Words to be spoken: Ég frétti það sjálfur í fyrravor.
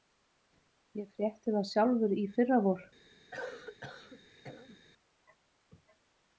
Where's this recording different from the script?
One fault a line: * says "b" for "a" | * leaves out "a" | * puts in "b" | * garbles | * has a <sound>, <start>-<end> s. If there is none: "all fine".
* has a cough, 3.3-4.8 s